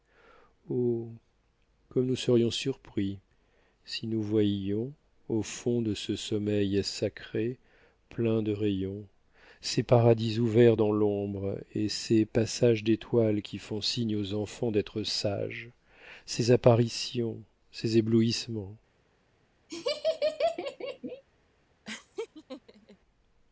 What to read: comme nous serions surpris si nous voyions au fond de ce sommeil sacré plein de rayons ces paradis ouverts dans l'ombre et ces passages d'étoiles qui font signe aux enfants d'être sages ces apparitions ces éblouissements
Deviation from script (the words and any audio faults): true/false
true